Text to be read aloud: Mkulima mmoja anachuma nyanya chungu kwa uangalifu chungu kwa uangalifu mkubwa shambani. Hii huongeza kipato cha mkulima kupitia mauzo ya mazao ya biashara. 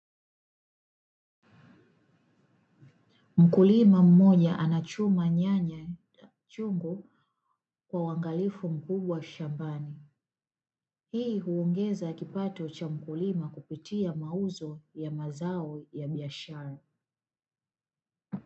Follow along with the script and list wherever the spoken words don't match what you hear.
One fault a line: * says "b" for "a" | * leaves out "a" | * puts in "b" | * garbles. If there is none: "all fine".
* leaves out "chungu kwa uangalifu"